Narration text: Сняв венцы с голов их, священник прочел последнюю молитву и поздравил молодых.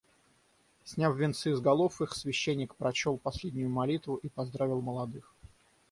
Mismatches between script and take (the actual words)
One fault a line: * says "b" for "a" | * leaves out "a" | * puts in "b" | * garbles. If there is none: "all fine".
all fine